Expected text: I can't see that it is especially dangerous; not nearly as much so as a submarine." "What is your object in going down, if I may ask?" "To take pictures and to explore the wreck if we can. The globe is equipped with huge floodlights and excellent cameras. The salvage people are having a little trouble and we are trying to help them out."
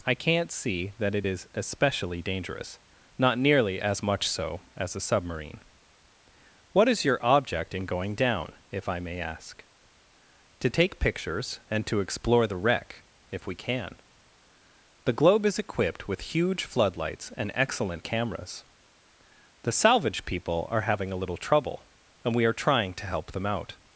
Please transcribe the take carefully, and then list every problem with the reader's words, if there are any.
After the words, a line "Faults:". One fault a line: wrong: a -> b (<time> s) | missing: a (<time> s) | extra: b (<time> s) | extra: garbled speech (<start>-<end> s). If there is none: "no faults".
I can't see that it is especially dangerous; not nearly as much so as a submarine." "What is your object in going down, if I may ask?" "To take pictures and to explore the wreck if we can. The globe is equipped with huge floodlights and excellent cameras. The salvage people are having a little trouble and we are trying to help them out."
Faults:
no faults